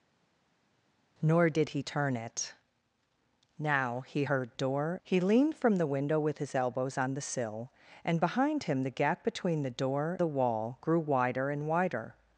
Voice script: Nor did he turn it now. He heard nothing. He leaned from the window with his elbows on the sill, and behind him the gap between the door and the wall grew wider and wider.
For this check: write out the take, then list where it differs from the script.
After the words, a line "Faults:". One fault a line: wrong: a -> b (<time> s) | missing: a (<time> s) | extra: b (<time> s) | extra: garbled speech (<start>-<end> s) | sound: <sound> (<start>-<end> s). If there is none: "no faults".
Nor did he turn it now. He heard door. He leaned from the window with his elbows on the sill, and behind him the gap between the door the wall grew wider and wider.
Faults:
wrong: nothing -> door (4.5 s)
missing: and (10.2 s)